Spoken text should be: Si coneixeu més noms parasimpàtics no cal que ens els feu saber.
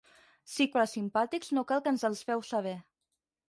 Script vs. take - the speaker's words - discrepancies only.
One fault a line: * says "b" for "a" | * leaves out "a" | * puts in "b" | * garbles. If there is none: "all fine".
* leaves out "coneixeu més noms"